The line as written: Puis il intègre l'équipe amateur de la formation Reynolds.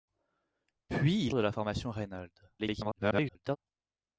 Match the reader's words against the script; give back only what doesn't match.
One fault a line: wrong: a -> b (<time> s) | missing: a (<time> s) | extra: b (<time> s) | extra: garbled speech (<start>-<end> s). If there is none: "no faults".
missing: intègre l'équipe amateur (1.4 s)
extra: garbled speech (2.6-3.6 s)